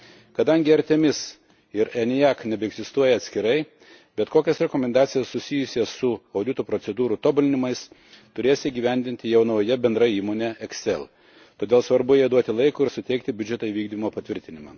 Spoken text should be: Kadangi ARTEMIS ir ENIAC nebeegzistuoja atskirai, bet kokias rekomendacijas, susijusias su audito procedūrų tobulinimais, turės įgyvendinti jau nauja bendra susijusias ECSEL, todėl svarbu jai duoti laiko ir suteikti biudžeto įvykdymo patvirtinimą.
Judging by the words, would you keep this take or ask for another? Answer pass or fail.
fail